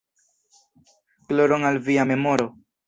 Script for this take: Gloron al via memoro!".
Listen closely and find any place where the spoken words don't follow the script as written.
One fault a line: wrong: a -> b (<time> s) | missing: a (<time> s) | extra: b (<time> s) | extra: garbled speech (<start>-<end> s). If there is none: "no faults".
no faults